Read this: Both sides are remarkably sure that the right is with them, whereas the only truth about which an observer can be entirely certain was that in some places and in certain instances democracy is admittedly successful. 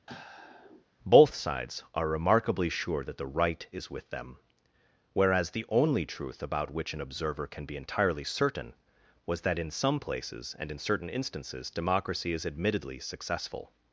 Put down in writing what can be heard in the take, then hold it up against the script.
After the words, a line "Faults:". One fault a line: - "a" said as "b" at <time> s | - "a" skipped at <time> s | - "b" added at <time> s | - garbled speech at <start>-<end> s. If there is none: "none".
Both sides are remarkably sure that the right is with them, whereas the only truth about which an observer can be entirely certain was that in some places and in certain instances democracy is admittedly successful.
Faults:
none